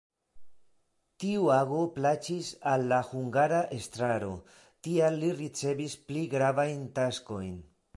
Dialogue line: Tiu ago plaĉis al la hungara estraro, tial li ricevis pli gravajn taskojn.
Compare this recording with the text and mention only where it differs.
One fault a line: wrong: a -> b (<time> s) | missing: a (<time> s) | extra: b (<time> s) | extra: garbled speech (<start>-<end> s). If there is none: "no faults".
no faults